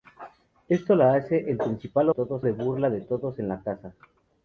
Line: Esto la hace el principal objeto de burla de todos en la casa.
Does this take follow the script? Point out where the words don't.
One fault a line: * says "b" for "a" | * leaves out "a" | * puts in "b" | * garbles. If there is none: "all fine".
* says "todos" for "objeto"